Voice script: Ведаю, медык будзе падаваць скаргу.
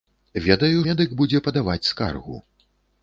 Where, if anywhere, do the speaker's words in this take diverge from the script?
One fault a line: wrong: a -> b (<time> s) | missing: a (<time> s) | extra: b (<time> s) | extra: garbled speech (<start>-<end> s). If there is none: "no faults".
no faults